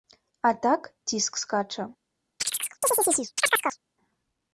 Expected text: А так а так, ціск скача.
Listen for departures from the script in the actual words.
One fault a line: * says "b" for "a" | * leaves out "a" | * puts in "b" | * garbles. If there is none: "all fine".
* leaves out "а так"